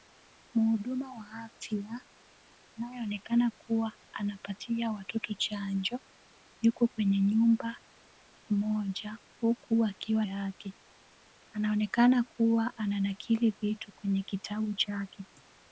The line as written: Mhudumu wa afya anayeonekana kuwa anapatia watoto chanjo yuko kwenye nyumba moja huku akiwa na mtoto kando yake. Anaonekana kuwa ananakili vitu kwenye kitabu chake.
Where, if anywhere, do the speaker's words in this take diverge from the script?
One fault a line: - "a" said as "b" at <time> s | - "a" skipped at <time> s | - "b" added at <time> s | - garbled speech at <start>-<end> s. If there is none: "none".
- "na mtoto kando" skipped at 10.3 s